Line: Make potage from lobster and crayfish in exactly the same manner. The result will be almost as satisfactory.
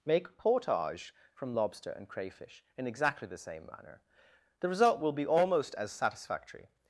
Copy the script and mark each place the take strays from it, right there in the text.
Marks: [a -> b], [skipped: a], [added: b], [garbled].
Make potage from lobster and crayfish in exactly the same manner. The result will be almost as satisfactory.